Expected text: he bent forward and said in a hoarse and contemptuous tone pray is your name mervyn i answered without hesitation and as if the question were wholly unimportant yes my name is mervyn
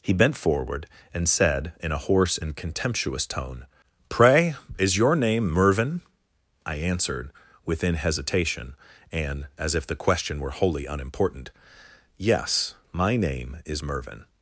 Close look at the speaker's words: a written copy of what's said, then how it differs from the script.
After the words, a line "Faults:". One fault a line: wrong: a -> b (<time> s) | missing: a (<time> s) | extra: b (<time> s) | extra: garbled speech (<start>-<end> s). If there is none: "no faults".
he bent forward and said in a hoarse and contemptuous tone pray is your name mervyn i answered within hesitation and as if the question were wholly unimportant yes my name is mervyn
Faults:
wrong: without -> within (7.6 s)